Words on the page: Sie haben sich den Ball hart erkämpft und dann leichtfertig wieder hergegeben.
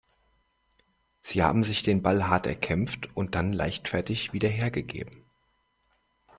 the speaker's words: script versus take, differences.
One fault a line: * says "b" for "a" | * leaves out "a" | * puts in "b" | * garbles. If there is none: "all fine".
all fine